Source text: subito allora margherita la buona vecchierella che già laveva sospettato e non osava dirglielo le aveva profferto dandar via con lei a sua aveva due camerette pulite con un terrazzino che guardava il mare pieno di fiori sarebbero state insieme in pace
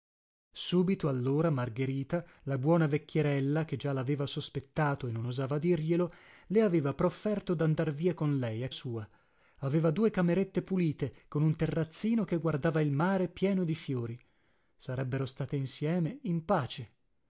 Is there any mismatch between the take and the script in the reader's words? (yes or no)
no